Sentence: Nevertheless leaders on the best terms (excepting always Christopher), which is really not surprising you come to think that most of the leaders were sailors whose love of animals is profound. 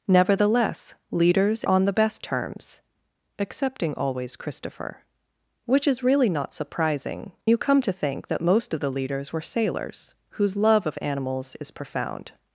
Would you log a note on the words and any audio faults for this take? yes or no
no